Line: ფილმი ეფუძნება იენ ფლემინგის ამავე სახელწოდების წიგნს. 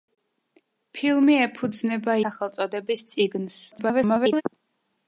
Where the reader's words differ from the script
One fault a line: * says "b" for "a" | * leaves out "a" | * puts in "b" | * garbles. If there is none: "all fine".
* leaves out "იენ ფლემინგის ამავე"
* garbles